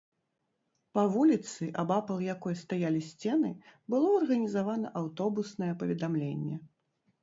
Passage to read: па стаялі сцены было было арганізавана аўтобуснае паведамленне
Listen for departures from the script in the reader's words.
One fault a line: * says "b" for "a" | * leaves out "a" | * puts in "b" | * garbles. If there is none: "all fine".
* puts in "вуліцы абапал якой"
* leaves out "было"